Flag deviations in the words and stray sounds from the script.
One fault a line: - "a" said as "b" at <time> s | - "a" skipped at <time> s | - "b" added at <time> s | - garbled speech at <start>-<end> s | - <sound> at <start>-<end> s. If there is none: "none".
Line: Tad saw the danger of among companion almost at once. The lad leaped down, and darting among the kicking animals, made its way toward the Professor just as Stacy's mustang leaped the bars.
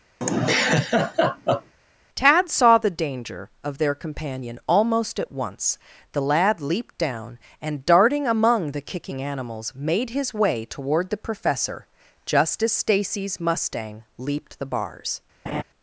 - laugh at 0.2-1.7 s
- "among" said as "their" at 3.8 s
- "its" said as "his" at 10.1 s
- laugh at 15.5-15.6 s